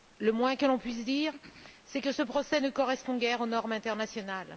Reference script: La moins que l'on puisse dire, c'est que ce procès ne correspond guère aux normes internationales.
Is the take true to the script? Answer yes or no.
no